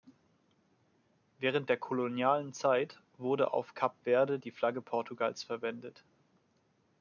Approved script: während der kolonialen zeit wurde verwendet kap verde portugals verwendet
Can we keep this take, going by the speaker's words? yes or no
no